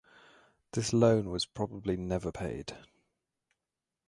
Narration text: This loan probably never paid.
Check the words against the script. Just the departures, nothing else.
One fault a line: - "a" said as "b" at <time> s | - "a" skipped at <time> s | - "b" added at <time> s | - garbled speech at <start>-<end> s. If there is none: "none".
- "was" added at 1.3 s